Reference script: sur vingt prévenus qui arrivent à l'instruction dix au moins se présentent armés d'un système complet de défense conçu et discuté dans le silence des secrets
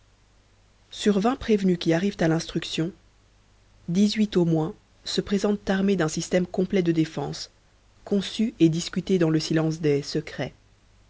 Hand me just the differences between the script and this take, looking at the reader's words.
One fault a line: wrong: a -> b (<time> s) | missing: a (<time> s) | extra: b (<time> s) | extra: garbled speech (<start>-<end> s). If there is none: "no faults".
extra: huit (4.2 s)